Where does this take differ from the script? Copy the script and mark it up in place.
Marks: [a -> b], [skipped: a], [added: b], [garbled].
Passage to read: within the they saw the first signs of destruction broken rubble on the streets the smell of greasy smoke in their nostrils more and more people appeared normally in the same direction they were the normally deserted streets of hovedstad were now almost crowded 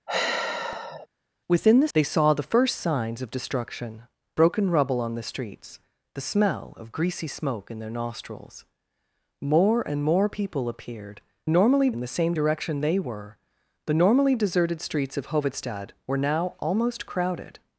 within the they saw the first signs of destruction broken rubble on the streets the smell of greasy smoke in their nostrils more and more people appeared normally in the same direction they were the normally deserted streets of hovedstad were now almost crowded